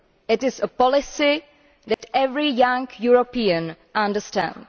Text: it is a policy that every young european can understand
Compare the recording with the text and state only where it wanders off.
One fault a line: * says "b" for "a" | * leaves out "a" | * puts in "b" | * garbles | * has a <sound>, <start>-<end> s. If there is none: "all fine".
* has a dropout, 1.9-2.0 s
* leaves out "can"